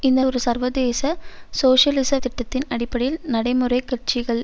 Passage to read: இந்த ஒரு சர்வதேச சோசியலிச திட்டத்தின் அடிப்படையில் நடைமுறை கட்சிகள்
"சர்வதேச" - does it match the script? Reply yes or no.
yes